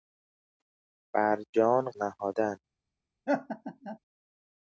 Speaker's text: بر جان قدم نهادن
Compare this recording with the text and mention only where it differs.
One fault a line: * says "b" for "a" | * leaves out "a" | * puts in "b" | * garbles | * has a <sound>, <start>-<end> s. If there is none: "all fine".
* leaves out "قدم"
* has a laugh, 3.3-4.0 s